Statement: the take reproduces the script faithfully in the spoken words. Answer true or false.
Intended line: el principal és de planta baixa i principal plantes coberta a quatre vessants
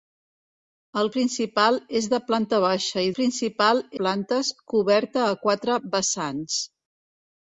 true